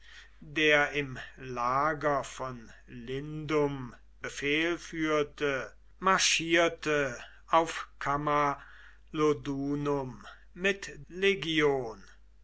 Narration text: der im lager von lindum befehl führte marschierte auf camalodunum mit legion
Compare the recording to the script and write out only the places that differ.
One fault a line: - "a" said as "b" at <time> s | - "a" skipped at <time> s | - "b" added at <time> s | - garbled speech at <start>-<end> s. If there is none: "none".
none